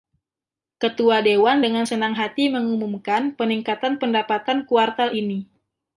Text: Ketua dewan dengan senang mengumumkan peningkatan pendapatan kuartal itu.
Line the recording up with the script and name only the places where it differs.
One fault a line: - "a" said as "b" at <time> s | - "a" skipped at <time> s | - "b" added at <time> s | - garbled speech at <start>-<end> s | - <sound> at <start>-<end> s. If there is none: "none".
- "hati" added at 2.1 s
- "itu" said as "ini" at 5.1 s